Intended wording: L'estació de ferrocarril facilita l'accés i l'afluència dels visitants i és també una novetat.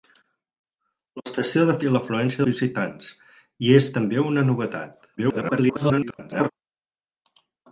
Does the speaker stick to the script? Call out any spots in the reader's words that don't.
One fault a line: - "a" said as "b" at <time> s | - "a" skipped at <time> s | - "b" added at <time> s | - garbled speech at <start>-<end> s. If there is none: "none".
- "ferrocarril facilita l'accés" skipped at 1.8 s
- "dels" skipped at 2.4 s
- garbled speech at 5.2-6.5 s